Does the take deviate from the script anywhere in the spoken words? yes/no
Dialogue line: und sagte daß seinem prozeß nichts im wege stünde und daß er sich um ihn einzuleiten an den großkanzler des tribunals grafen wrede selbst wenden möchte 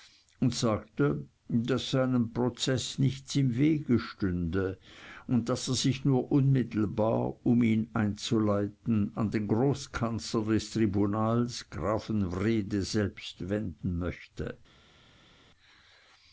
yes